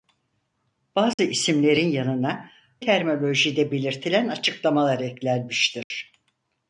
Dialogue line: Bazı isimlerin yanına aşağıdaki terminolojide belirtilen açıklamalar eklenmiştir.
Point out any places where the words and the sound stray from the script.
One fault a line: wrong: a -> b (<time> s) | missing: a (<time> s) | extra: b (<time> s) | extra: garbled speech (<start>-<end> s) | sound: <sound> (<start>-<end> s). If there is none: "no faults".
sound: dropout (1.1-1.2 s)
missing: aşağıdaki (2.5 s)
sound: dropout (5.8-5.9 s)